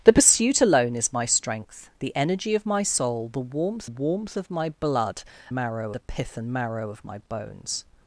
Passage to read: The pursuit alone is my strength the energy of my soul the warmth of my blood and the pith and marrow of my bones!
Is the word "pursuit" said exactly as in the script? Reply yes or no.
yes